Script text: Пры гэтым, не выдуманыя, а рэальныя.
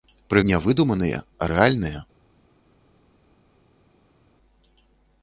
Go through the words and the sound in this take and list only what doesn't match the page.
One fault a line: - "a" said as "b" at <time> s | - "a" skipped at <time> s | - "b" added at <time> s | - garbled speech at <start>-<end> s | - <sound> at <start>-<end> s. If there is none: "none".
- "гэтым" skipped at 0.4 s